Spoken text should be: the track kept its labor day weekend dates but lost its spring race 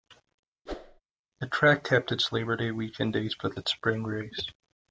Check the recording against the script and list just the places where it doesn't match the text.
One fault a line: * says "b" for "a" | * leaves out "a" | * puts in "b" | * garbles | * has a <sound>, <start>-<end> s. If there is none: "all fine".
* has a whoosh, 0.7-1.0 s
* leaves out "lost"